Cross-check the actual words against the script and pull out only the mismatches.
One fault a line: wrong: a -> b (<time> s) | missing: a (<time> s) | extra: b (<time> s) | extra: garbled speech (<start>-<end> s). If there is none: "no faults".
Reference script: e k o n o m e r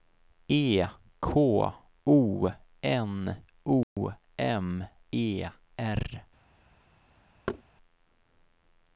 no faults